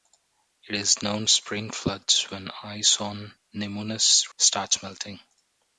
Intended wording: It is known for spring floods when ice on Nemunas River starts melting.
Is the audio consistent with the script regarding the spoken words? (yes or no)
no